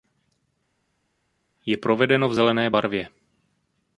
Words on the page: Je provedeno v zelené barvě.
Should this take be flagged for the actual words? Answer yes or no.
no